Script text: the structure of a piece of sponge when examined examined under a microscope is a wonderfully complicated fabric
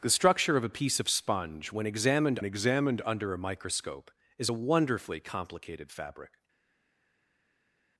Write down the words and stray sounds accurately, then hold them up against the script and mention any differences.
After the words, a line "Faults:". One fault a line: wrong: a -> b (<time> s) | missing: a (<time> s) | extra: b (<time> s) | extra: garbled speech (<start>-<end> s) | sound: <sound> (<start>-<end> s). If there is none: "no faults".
the structure of a piece of sponge when examined examined under a microscope is a wonderfully complicated fabric
Faults:
no faults